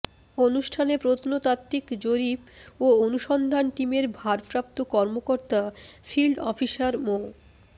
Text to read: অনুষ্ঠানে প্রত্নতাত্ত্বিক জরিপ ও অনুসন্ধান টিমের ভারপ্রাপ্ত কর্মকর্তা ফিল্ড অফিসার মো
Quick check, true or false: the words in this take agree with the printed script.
true